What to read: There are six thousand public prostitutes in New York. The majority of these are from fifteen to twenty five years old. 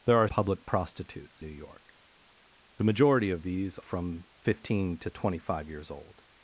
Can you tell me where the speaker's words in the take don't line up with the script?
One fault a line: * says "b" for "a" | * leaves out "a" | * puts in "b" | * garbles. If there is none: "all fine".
* leaves out "six thousand"
* leaves out "in"
* leaves out "are"